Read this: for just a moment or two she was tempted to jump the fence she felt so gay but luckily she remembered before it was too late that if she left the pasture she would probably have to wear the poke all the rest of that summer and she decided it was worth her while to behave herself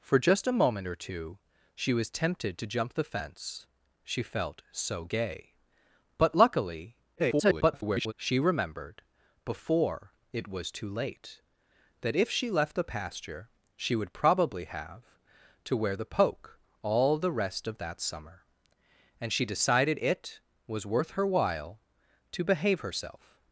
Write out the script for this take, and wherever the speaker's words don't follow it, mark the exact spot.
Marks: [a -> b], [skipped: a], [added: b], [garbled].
for just a moment or two she was tempted to jump the fence she felt so gay but luckily [garbled] she remembered before it was too late that if she left the pasture she would probably have to wear the poke all the rest of that summer and she decided it was worth her while to behave herself